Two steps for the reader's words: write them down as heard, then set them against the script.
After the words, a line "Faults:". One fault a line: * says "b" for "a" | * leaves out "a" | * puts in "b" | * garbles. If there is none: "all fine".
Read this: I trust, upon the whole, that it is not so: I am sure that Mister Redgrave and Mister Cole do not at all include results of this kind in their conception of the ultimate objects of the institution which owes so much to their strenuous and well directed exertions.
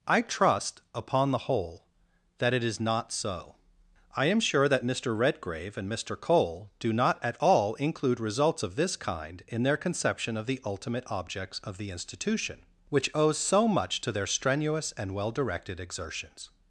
I trust, upon the whole, that it is not so: I am sure that Mister Redgrave and Mister Cole do not at all include results of this kind in their conception of the ultimate objects of the institution which owes so much to their strenuous and well directed exertions.
Faults:
all fine